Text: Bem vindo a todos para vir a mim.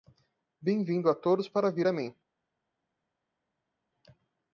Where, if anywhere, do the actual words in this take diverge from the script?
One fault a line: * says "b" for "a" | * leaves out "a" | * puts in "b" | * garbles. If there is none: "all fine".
all fine